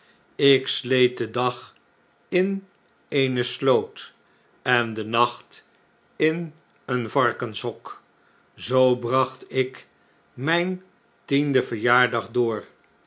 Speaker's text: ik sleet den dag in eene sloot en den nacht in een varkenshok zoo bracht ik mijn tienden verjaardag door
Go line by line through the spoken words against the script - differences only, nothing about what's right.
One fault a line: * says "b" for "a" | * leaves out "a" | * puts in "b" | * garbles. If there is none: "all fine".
all fine